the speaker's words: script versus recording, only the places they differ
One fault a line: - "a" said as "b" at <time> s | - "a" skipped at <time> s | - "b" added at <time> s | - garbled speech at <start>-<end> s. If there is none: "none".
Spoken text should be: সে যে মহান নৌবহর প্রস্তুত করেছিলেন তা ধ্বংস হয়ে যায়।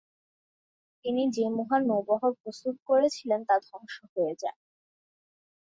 - "সে" said as "তিনি" at 1.1 s